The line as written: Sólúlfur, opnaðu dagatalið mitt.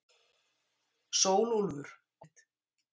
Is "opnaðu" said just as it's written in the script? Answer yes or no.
no